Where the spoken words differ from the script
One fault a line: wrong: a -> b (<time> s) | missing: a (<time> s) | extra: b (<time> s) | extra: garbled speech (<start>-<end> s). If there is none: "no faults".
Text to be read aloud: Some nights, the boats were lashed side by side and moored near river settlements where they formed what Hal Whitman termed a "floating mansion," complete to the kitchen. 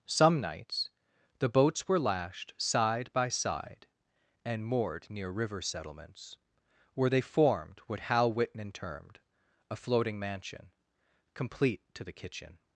no faults